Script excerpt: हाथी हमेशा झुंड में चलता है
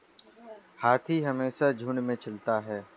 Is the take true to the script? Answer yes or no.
yes